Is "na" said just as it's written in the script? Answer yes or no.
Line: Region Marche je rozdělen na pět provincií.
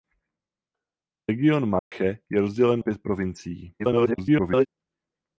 no